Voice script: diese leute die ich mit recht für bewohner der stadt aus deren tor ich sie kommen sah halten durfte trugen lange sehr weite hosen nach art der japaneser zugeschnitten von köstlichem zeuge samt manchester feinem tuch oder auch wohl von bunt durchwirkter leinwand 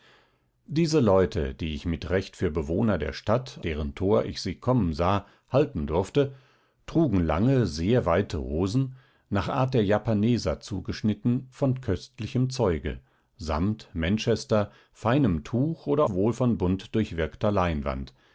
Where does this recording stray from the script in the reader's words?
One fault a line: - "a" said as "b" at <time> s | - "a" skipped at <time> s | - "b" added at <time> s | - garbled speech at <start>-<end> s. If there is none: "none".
- "aus" skipped at 3.6 s
- "auch" skipped at 16.0 s